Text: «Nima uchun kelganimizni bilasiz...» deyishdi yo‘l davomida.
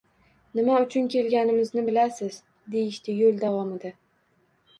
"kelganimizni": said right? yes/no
yes